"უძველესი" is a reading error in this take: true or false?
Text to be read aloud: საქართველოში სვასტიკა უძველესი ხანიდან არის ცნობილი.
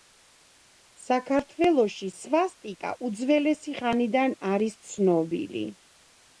false